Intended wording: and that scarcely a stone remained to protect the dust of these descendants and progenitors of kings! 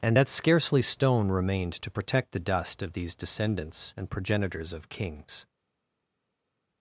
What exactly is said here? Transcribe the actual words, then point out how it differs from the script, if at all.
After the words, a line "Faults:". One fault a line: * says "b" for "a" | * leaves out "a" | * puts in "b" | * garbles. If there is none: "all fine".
and that scarcely stone remained to protect the dust of these descendants and progenitors of kings!
Faults:
* leaves out "a"